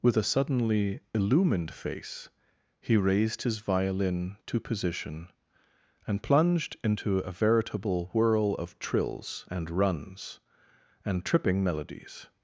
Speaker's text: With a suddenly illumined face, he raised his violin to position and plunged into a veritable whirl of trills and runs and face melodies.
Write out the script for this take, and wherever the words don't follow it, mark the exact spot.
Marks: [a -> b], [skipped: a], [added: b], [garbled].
With a suddenly illumined face, he raised his violin to position and plunged into a veritable whirl of trills and runs and [face -> tripping] melodies.